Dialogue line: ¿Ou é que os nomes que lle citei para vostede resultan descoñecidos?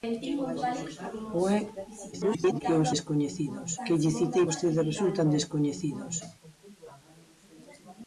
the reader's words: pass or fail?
fail